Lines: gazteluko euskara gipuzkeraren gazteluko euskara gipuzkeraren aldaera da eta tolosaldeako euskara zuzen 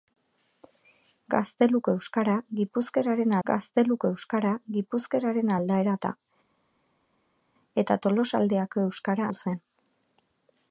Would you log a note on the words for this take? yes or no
no